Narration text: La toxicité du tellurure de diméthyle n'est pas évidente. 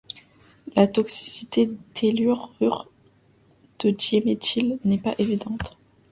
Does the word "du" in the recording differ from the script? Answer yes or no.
yes